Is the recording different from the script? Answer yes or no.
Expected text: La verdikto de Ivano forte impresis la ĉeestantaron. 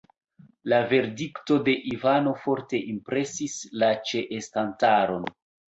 no